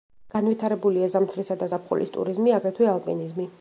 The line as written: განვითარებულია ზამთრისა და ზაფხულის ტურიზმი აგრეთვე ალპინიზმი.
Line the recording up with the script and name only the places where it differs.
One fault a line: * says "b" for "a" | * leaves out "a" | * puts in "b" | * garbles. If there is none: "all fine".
all fine